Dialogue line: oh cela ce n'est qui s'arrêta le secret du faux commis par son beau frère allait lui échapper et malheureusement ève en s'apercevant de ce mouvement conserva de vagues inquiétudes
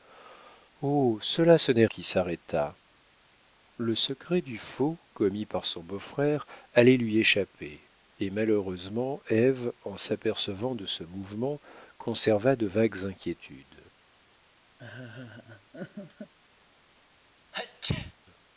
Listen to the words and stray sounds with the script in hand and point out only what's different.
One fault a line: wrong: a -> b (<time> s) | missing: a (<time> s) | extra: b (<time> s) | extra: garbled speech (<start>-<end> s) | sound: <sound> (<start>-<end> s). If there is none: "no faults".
sound: laugh (14.8-16.3 s)
sound: sneeze (17.5-18.1 s)